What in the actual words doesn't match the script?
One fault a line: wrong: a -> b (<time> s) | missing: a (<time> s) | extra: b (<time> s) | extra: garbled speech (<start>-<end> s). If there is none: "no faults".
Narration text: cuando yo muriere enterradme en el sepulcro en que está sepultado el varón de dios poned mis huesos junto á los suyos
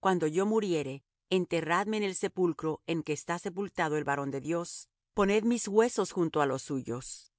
no faults